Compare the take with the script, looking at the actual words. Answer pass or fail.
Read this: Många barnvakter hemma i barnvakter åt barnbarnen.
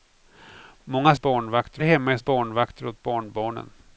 pass